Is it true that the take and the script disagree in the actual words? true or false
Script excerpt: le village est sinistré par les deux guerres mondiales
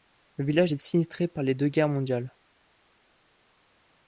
false